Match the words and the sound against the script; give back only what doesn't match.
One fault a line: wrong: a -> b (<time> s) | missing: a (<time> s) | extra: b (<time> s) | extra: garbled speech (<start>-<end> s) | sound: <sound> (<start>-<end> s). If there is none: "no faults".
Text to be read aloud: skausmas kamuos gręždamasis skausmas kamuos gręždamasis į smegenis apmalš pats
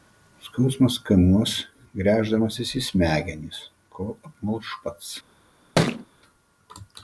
missing: skausmas kamuos gręždamasis (2.7 s)
extra: kol (4.0 s)
sound: thud (5.8-6.1 s)